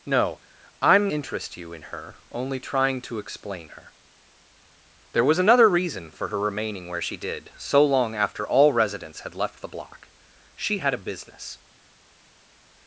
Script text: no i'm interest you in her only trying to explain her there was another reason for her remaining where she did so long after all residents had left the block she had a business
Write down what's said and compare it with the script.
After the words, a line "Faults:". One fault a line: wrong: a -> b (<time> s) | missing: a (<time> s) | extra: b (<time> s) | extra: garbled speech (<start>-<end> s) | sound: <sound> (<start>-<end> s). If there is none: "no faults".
no i'm interest you in her only trying to explain her there was another reason for her remaining where she did so long after all residents had left the block she had a business
Faults:
no faults